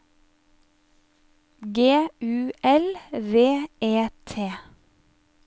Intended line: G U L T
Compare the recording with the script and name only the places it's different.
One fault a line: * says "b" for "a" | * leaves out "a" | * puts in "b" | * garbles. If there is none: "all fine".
* puts in "V E"